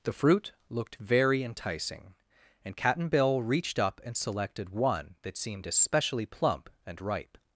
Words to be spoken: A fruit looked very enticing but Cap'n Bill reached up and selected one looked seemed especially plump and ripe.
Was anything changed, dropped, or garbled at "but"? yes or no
yes